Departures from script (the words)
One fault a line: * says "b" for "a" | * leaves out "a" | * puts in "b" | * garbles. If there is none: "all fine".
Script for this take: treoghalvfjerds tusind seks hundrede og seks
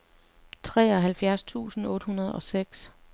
* says "otte" for "seks"